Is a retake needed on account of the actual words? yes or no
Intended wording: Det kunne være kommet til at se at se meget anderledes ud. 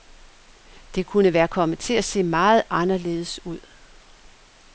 yes